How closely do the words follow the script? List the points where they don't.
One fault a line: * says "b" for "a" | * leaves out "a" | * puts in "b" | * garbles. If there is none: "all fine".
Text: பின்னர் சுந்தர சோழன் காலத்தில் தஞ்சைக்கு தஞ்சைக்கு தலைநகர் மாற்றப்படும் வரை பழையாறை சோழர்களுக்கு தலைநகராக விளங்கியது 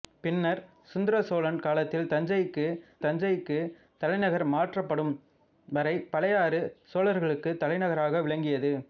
all fine